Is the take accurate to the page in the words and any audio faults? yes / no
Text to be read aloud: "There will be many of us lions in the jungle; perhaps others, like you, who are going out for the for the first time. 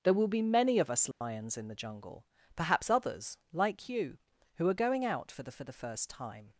no